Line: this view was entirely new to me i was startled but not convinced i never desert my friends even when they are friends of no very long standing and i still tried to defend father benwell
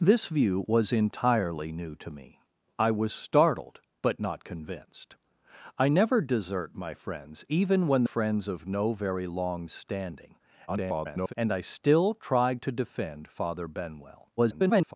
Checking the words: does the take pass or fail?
fail